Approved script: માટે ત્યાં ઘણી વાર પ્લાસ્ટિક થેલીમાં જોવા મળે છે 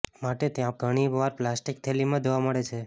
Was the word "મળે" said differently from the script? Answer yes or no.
no